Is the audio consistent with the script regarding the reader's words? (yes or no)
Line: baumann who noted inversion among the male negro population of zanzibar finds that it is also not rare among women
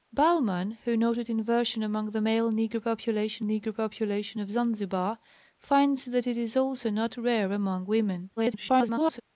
no